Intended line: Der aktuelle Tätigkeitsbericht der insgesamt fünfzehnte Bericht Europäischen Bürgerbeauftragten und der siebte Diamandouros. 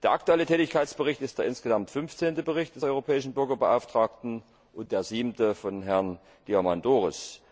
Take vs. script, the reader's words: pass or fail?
fail